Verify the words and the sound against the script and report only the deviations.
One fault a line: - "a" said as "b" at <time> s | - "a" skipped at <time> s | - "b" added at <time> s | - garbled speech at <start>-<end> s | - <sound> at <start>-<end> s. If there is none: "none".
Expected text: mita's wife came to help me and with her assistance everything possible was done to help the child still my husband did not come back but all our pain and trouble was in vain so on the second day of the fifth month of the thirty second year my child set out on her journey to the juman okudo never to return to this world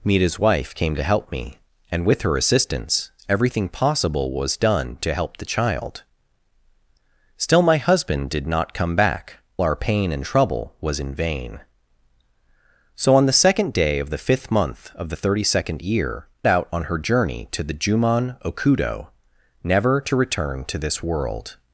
- "but all" skipped at 9.4 s
- "my child set" skipped at 16.3 s